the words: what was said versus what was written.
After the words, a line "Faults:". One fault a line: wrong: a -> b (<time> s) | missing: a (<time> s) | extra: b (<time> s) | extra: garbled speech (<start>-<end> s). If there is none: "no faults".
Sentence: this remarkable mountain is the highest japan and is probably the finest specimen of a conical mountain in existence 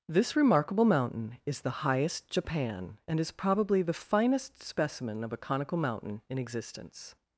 this remarkable mountain is the highest japan and is probably the finest specimen of a conical mountain in existence
Faults:
no faults